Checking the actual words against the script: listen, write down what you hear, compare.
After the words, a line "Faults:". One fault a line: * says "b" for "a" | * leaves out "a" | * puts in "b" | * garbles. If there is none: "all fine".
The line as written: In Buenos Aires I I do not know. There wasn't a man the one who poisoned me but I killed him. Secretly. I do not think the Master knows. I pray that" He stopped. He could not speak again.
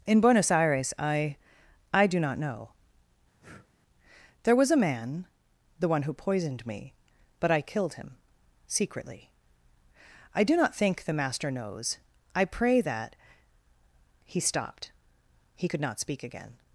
In Buenos Aires I I do not know. There was a man the one who poisoned me but I killed him. Secretly. I do not think the Master knows. I pray that" He stopped. He could not speak again.
Faults:
* says "was" for "wasn't"